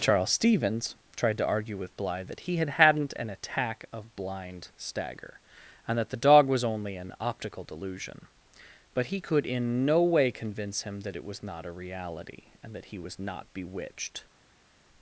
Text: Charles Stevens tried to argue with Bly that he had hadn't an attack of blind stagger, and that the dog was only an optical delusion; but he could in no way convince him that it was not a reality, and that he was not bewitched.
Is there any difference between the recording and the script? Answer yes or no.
no